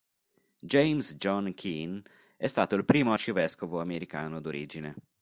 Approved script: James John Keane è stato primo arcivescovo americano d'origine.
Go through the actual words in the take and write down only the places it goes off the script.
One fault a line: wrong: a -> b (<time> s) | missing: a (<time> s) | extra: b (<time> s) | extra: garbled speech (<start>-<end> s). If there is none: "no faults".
extra: il (2.8 s)